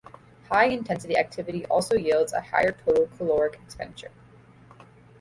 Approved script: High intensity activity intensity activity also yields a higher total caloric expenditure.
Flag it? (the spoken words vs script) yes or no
yes